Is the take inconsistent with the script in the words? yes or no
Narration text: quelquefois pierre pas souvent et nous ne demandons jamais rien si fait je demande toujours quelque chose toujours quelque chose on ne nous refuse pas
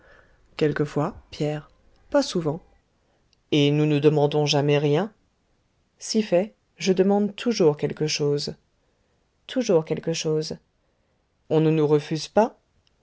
no